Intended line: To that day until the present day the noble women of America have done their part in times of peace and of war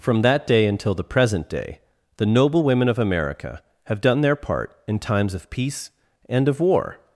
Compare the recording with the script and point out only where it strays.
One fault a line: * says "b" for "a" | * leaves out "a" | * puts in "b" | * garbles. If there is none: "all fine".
* says "From" for "To"